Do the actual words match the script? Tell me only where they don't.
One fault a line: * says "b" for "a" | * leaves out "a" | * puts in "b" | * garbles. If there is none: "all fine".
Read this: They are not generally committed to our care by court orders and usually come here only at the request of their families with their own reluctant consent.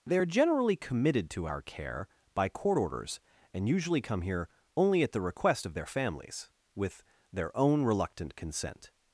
* leaves out "not"